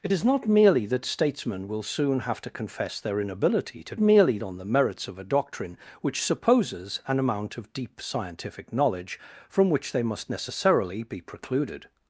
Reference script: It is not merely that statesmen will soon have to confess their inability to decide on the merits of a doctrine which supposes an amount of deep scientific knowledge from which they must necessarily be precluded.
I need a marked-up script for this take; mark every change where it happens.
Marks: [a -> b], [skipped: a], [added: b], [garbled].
It is not merely that statesmen will soon have to confess their inability to [decide -> merely] on the merits of a doctrine which supposes an amount of deep scientific knowledge from which they must necessarily be precluded.